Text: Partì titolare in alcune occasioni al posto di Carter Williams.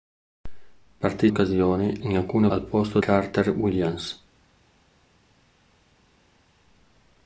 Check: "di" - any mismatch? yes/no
yes